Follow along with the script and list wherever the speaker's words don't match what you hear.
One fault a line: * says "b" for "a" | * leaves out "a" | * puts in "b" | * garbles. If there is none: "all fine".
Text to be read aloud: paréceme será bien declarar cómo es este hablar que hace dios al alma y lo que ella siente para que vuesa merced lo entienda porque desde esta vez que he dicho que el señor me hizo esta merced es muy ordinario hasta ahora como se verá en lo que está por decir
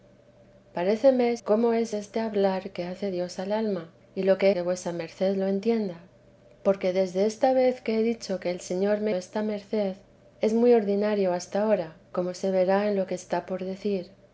* leaves out "será bien declarar"
* leaves out "ella siente para"
* leaves out "hizo"